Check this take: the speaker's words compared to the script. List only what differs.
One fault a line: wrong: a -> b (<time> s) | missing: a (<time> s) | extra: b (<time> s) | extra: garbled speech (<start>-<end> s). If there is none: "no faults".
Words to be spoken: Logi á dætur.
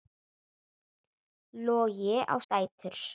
no faults